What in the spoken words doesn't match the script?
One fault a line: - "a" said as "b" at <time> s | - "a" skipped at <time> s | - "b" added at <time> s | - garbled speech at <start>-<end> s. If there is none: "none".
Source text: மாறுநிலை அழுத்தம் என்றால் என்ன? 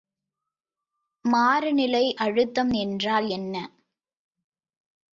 none